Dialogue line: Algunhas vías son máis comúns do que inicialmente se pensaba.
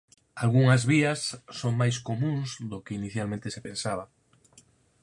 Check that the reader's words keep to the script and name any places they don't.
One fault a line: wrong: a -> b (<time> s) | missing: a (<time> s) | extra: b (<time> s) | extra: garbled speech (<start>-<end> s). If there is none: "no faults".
no faults